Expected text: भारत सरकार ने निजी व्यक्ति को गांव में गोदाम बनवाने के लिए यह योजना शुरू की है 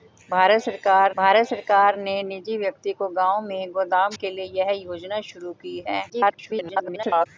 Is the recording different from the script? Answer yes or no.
yes